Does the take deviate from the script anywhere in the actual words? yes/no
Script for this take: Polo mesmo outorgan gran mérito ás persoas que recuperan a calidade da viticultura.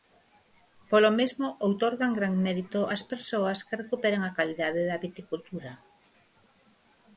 no